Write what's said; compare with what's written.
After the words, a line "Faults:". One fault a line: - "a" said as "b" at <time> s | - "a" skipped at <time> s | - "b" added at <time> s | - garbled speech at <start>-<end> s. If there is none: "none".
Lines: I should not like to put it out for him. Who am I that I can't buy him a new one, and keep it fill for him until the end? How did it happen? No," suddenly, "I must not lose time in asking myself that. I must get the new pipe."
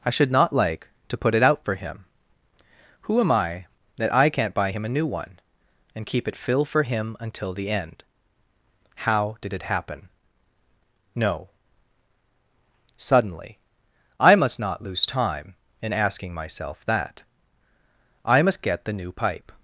I should not like to put it out for him. Who am I that I can't buy him a new one, and keep it fill for him until the end? How did it happen? No," suddenly, "I must not lose time in asking myself that. I must get the new pipe."
Faults:
none